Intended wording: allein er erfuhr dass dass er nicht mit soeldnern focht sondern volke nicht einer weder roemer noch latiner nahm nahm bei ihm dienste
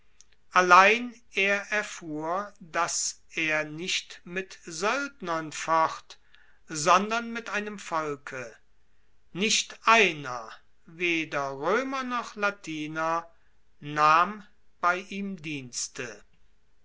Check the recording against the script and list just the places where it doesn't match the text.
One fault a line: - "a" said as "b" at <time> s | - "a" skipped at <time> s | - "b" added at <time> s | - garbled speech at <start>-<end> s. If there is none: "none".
- "dass" skipped at 3.2 s
- "mit einem" added at 7.3 s
- "nahm" skipped at 14.5 s